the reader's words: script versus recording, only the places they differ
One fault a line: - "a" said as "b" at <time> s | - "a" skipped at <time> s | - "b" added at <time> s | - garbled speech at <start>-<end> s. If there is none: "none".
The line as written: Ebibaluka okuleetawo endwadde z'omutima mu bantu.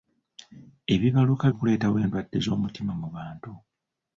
none